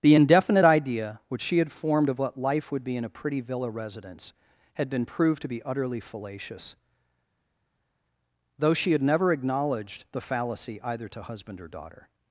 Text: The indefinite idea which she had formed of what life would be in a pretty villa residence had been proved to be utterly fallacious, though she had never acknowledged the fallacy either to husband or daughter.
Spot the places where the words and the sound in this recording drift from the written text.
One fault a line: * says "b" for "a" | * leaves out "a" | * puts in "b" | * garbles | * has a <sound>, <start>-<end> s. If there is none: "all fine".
all fine